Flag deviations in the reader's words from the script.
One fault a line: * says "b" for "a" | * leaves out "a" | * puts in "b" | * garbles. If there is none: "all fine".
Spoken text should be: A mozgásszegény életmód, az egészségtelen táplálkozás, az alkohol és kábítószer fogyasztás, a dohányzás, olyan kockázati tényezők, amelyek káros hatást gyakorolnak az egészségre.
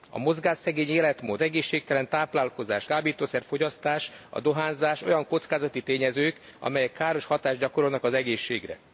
* leaves out "az"
* leaves out "az alkohol és"